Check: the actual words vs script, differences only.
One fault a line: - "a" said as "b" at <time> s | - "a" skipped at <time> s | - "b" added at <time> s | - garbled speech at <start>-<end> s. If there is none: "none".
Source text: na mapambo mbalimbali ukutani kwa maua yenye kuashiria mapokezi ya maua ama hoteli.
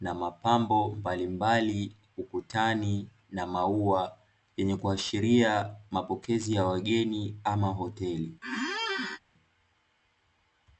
- "kwa" said as "na" at 3.3 s
- "maua" said as "wageni" at 6.6 s